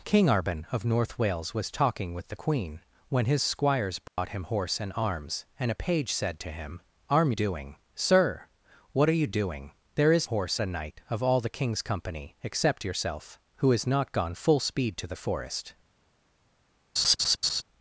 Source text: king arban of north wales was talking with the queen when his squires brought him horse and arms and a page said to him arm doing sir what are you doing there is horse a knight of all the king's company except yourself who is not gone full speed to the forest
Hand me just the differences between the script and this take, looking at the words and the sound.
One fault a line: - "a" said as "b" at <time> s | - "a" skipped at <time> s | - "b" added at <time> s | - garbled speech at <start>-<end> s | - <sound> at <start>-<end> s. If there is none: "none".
- dropout at 4.1-4.2 s
- laugh at 17.0-17.6 s